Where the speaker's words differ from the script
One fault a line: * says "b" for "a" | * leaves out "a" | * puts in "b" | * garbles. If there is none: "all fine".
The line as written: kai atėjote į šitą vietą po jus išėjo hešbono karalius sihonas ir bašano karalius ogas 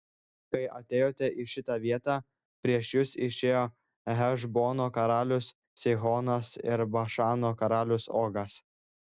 * says "prieš" for "po"